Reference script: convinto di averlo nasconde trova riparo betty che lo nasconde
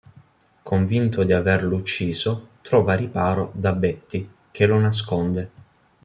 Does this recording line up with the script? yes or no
no